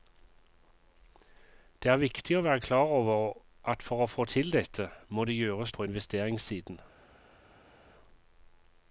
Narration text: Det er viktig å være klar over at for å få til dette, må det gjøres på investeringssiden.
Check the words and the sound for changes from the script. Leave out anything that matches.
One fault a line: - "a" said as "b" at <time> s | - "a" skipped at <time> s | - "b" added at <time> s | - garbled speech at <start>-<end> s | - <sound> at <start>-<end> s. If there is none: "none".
none